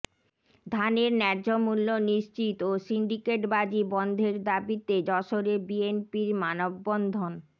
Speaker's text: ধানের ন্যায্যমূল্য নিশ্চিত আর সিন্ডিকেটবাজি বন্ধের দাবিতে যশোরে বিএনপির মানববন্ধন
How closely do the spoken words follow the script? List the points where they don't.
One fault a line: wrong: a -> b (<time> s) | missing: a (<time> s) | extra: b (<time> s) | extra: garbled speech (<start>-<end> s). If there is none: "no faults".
wrong: আর -> ও (2.6 s)